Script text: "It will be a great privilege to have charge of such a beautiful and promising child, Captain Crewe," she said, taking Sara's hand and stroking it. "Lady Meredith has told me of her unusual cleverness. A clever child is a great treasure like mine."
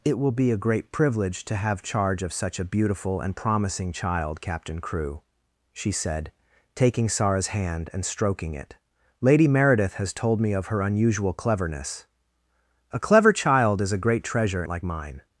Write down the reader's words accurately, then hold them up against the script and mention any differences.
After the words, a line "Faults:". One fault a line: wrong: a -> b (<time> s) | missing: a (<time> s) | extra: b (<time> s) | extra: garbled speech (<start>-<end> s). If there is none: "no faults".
"It will be a great privilege to have charge of such a beautiful and promising child, Captain Crewe," she said, taking Sara's hand and stroking it. "Lady Meredith has told me of her unusual cleverness. A clever child is a great treasure like mine."
Faults:
no faults